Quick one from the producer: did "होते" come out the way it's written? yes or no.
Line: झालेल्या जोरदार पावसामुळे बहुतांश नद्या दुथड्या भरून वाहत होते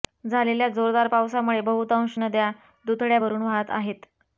no